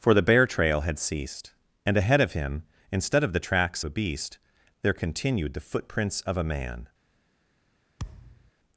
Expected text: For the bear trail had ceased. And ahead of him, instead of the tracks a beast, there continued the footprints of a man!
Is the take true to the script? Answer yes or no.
yes